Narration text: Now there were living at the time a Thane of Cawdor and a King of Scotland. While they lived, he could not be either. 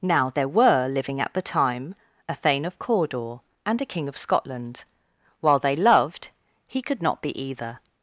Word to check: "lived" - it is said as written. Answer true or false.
false